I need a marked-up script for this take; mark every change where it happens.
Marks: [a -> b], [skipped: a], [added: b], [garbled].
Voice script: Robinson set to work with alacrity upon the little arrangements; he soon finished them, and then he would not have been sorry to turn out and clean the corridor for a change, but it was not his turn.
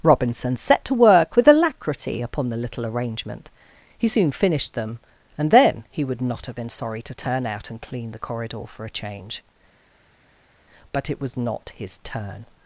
Robinson set to work with alacrity upon the little [arrangements; -> arrangement] he soon finished them, and then he would not have been sorry to turn out and clean the corridor for a change, but it was not his turn.